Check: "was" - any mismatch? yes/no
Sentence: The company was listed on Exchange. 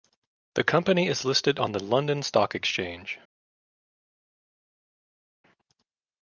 yes